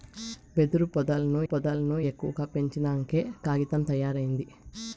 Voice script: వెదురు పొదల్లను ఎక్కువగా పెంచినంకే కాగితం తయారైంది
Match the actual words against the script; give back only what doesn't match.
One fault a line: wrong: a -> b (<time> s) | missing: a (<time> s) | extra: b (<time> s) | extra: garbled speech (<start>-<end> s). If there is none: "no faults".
extra: పొదల్లను (1.4 s)